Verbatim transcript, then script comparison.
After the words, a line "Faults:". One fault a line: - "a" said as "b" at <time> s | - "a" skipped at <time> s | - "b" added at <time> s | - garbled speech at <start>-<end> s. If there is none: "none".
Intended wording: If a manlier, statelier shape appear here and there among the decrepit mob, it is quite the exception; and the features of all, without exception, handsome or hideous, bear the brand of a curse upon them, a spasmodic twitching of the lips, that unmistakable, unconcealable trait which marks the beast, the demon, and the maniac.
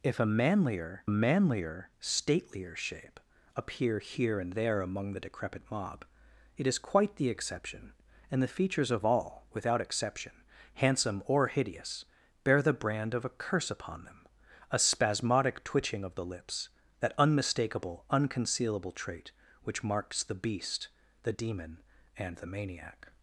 If a manlier manlier, statelier shape appear here and there among the decrepit mob, it is quite the exception; and the features of all, without exception, handsome or hideous, bear the brand of a curse upon them, a spasmodic twitching of the lips, that unmistakable, unconcealable trait which marks the beast, the demon, and the maniac.
Faults:
- "manlier" added at 1.1 s